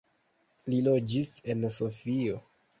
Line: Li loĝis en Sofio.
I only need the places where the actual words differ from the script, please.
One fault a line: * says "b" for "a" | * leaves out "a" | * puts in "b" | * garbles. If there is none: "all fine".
all fine